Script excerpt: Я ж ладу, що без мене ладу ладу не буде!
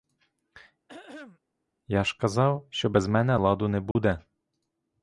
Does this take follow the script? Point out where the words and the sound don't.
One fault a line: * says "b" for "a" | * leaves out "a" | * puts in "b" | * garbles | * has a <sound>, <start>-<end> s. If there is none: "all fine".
* has a throat clearing, 0.9-1.4 s
* says "казав" for "ладу"
* leaves out "ладу"
* has a dropout, 3.9-4.0 s